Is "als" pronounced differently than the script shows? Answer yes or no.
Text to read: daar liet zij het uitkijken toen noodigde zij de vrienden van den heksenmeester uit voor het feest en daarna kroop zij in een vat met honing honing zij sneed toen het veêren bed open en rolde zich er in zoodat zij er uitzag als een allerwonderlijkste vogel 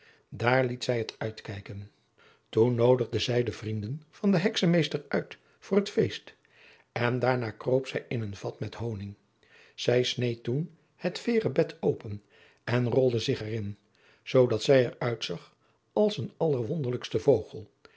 no